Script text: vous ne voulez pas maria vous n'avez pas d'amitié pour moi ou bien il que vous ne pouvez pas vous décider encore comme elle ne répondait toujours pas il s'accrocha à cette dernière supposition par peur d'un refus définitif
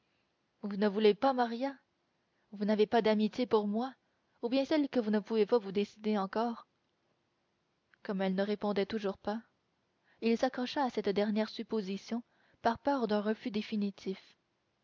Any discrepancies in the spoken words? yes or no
no